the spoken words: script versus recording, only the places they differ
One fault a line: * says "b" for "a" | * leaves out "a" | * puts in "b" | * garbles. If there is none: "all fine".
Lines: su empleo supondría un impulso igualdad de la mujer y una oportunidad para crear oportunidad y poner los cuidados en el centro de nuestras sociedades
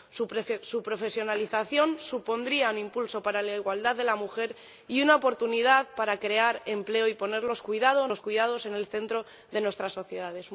* says "profesionalización" for "empleo"
* puts in "para la"
* says "empleo" for "oportunidad"